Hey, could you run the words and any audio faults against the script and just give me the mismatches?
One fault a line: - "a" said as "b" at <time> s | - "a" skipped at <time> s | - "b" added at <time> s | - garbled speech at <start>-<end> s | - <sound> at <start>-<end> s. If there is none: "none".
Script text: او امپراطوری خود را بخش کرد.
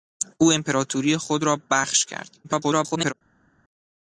- garbled speech at 2.4-3.1 s